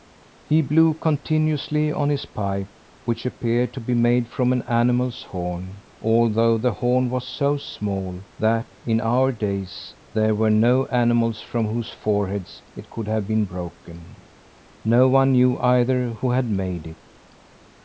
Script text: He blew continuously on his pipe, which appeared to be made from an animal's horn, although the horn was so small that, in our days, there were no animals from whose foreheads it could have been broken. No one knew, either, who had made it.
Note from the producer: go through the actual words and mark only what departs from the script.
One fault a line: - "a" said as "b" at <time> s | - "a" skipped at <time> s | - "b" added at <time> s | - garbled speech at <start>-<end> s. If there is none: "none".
none